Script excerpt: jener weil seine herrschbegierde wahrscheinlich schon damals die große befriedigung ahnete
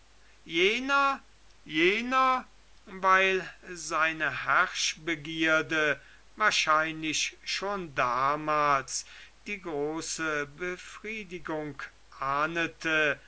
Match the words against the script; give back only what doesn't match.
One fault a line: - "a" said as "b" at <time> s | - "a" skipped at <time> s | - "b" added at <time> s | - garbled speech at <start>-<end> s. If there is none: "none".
- "jener" added at 1.6 s